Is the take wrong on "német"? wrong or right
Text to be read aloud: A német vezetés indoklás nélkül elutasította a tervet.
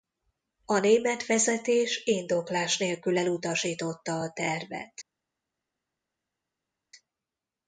right